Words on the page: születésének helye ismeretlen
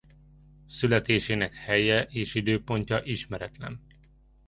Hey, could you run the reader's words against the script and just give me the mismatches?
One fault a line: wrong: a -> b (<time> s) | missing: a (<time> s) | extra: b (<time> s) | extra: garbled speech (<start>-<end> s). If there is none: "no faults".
extra: és időpontja (2.0 s)